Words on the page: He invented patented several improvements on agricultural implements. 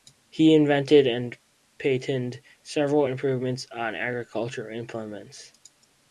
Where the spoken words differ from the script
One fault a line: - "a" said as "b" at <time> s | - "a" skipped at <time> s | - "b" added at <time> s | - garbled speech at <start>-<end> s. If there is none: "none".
- "and" added at 1.1 s